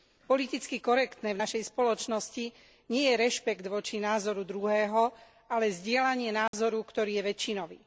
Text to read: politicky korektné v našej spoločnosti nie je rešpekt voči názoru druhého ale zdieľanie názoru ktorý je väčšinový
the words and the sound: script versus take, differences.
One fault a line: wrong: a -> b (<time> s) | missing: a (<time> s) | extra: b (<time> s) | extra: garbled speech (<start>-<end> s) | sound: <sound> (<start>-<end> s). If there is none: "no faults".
sound: dropout (6.5-6.5 s)